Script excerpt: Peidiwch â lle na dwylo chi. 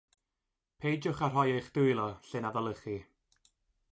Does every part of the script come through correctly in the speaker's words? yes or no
no